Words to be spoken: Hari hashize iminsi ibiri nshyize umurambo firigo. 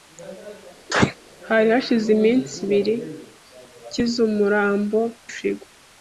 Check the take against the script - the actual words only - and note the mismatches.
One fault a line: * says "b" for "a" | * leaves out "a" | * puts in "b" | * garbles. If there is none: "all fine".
all fine